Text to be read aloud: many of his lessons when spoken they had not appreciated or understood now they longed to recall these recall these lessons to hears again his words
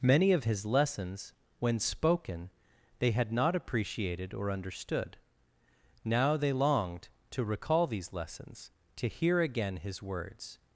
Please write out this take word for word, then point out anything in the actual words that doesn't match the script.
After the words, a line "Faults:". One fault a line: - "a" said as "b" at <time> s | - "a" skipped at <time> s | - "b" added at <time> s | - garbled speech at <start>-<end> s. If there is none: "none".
many of his lessons when spoken they had not appreciated or understood now they longed to recall these lessons to hear again his words
Faults:
- "recall these" skipped at 8.1 s
- "hears" said as "hear" at 9.1 s